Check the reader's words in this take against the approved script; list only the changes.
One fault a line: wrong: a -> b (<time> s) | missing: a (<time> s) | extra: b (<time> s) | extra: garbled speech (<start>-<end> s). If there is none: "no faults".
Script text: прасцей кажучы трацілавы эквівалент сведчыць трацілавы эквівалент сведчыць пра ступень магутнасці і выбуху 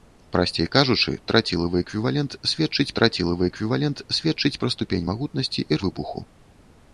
no faults